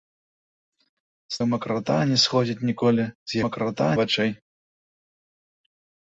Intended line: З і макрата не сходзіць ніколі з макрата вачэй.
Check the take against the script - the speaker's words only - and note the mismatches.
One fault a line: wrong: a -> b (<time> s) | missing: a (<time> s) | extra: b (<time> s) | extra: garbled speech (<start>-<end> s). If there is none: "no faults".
no faults